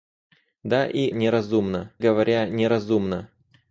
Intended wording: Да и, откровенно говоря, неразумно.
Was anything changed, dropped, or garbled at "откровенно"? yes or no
yes